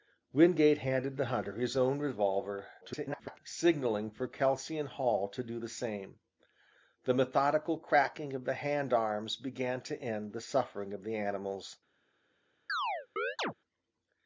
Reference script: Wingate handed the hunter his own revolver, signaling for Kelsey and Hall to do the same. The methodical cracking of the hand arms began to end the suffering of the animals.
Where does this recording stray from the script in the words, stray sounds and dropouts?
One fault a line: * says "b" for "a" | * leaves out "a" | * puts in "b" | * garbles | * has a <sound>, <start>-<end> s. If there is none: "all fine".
* garbles
* has a chirp, 12.7-13.5 s